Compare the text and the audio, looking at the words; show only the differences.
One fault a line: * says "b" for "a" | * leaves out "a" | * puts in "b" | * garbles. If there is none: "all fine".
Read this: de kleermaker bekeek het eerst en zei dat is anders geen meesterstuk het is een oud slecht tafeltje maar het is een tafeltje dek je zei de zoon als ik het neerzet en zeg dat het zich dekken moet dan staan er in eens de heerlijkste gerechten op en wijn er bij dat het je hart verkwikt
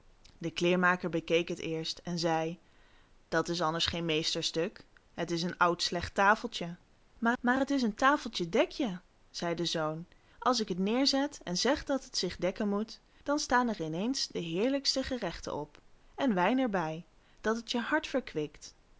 * puts in "maar"